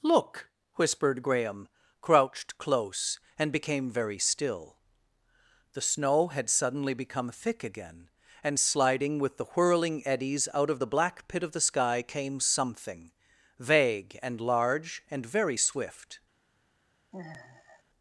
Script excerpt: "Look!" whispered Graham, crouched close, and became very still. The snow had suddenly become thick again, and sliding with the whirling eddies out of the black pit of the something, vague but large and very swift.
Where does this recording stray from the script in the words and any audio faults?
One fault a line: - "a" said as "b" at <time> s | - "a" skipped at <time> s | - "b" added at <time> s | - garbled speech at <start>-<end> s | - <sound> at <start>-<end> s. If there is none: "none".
- "sky came" added at 11.6 s
- "but" said as "and" at 14.2 s
- sigh at 17.1-17.8 s